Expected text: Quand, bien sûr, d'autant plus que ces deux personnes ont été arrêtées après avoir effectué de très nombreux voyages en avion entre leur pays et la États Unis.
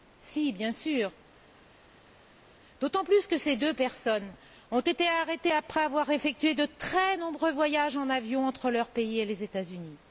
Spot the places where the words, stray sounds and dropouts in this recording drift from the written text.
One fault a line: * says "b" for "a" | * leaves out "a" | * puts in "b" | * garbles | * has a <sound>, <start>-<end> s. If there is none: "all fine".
* says "Si" for "Quand"
* says "les" for "la"